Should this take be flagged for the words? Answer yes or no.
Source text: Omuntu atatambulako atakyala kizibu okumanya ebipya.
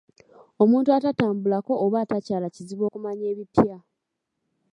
yes